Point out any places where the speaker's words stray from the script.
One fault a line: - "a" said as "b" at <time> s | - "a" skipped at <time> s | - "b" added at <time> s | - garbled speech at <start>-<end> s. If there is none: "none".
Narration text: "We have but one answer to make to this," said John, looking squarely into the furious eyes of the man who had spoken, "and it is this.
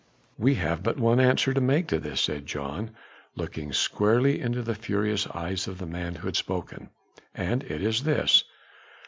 none